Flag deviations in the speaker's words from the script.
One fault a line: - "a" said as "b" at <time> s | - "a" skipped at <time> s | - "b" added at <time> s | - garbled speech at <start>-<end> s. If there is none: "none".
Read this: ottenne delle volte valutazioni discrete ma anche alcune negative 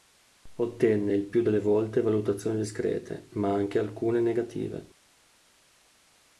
- "il più" added at 1.1 s